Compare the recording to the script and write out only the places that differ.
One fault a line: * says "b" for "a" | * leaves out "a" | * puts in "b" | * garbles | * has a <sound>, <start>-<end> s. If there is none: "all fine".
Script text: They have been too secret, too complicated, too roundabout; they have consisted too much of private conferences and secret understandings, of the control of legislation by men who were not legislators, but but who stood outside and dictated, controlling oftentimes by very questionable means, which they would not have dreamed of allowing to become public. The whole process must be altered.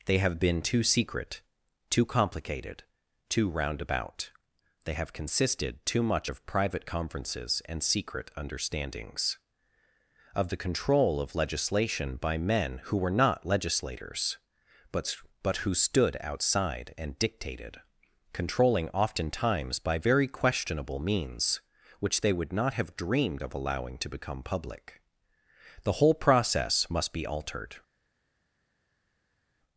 all fine